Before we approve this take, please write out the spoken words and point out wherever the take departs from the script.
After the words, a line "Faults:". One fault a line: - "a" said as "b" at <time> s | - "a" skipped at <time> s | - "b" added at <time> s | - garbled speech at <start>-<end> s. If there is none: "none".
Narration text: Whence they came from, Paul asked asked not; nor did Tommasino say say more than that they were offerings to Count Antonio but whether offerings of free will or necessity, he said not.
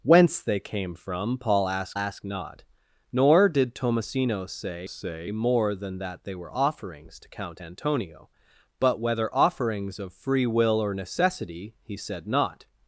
Whence they came from, Paul asked asked not; nor did Tommasino say say more than that they were offerings to Count Antonio but whether offerings of free will or necessity, he said not.
Faults:
none